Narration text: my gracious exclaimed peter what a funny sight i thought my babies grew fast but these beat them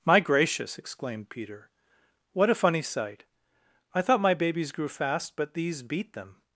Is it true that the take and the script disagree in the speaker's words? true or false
false